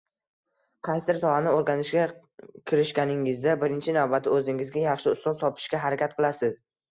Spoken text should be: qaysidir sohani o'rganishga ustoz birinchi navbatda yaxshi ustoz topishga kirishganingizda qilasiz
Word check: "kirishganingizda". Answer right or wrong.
wrong